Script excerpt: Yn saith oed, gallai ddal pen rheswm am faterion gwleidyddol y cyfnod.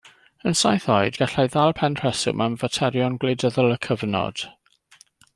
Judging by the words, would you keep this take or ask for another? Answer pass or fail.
pass